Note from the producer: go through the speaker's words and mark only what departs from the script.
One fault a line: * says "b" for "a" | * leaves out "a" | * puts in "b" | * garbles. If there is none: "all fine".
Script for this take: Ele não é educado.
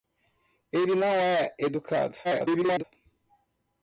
* garbles